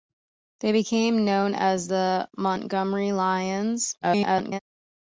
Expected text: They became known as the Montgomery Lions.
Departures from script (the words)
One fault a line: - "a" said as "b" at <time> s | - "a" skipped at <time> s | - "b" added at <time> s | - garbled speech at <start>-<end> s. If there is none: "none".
- garbled speech at 4.0-4.6 s